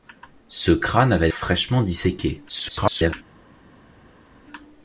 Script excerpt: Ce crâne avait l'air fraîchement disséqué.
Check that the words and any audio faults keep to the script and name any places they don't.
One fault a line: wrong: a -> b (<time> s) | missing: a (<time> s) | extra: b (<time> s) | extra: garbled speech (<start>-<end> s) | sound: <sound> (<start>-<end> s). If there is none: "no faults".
missing: l'air (1.3 s)
extra: garbled speech (2.5-3.1 s)